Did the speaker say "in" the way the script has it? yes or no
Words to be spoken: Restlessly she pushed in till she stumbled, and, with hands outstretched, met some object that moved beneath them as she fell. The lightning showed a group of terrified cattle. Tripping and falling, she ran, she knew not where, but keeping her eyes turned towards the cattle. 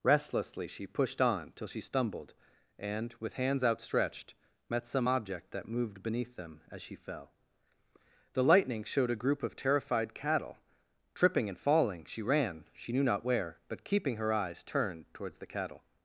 no